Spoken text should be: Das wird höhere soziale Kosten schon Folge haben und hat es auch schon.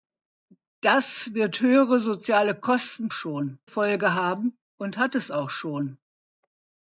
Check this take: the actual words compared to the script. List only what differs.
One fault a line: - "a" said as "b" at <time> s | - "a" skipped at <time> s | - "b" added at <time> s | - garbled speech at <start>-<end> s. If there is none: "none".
none